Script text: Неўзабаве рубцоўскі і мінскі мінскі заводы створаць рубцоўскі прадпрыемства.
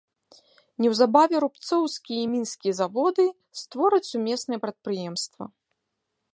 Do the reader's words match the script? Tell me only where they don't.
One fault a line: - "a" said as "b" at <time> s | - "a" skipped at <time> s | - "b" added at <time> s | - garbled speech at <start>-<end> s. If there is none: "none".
- "мінскі" skipped at 2.7 s
- "рубцоўскі" said as "сумеснае" at 4.1 s